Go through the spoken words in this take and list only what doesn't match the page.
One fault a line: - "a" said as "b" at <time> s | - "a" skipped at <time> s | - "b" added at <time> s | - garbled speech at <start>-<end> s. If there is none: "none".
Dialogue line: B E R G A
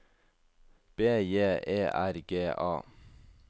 - "J" added at 1.3 s